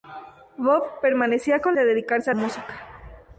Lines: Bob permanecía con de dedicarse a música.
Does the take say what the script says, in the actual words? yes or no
yes